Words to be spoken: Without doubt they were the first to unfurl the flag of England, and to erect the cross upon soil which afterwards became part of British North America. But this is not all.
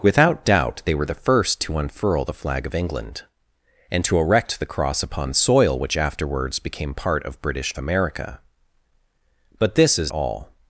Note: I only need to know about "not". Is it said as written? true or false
false